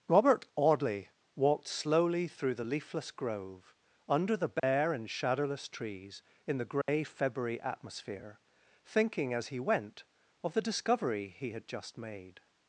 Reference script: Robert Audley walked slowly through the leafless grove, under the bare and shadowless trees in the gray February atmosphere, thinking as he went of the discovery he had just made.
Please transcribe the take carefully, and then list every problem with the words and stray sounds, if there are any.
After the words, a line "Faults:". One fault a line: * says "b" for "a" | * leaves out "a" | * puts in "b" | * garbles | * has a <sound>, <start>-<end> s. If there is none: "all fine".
Robert Audley walked slowly through the leafless grove, under the bare and shadowless trees in the gray February atmosphere, thinking as he went of the discovery he had just made.
Faults:
* has a dropout, 4.6-4.6 s
* has a dropout, 6.8-6.9 s